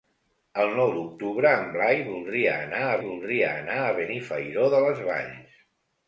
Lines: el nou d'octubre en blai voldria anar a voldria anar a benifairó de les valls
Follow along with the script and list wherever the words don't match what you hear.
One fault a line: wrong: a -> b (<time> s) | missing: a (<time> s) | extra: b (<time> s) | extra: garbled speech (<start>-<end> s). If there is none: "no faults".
no faults